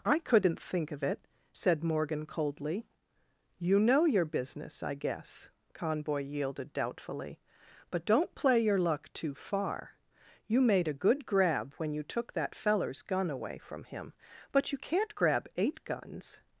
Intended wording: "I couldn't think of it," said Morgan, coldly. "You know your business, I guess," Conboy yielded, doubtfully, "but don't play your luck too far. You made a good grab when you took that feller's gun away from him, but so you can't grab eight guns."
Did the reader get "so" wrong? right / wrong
wrong